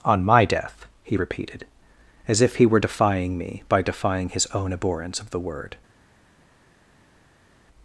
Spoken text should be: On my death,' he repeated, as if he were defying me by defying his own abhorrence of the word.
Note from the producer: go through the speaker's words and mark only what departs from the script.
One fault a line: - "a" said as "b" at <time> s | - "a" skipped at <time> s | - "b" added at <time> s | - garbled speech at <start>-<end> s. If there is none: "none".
none